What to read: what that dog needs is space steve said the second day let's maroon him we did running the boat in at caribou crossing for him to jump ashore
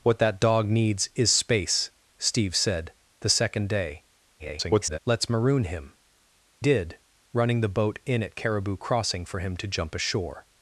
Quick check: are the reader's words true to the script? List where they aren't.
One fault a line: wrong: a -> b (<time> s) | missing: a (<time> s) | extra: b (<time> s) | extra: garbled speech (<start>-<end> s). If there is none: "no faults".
extra: garbled speech (4.4-5.0 s)
missing: we (5.9 s)